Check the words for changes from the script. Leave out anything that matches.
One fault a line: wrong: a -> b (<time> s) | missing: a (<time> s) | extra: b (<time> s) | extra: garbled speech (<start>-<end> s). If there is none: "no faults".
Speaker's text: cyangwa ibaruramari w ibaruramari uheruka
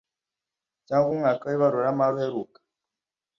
wrong: ibaruramari -> umwaka (1.1 s)